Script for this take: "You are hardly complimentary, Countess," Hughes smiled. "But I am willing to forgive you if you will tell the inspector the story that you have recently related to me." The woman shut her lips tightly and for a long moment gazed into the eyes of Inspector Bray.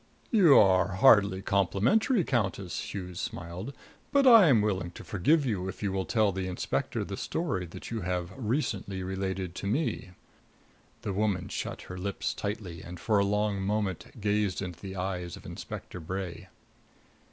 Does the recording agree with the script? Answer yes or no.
yes